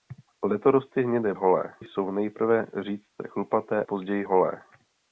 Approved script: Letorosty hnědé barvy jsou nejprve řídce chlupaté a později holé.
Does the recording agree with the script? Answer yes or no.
no